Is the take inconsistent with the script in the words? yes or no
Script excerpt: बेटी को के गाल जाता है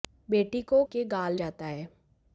no